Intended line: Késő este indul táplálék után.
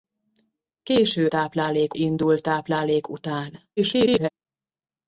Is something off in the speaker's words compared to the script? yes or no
yes